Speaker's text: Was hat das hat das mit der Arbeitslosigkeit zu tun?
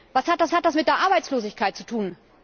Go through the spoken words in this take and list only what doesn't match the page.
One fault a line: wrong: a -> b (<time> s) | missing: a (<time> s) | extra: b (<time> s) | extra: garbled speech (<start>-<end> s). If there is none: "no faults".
no faults